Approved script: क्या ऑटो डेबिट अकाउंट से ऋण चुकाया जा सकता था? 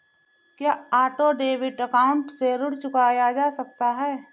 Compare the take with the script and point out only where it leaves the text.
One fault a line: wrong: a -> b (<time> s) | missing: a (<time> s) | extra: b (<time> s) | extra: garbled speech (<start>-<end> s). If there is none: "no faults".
wrong: था -> है (4.0 s)